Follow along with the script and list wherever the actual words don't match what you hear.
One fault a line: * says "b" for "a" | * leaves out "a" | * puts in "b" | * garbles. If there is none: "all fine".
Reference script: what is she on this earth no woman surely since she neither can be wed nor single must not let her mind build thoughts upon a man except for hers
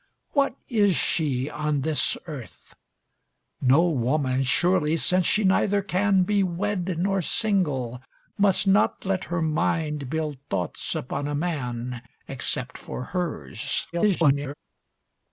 * garbles